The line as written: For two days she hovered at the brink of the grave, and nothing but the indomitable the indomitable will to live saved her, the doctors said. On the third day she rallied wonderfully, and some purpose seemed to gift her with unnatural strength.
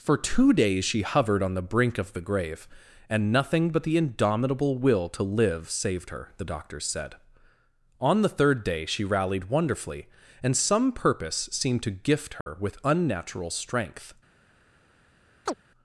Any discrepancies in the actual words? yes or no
yes